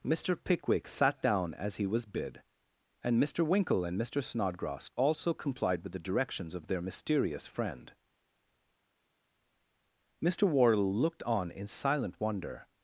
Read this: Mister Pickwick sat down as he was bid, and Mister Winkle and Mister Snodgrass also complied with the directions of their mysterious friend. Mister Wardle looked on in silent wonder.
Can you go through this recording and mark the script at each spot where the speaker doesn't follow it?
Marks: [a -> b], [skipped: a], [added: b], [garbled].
Mister Pickwick sat down as he was bid, and Mister Winkle and Mister Snodgrass also complied with the directions of their mysterious friend. Mister Wardle looked on in silent wonder.